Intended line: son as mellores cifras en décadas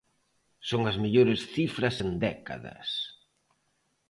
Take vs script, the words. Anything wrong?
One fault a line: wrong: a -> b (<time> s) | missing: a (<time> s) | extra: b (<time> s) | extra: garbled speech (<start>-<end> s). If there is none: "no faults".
no faults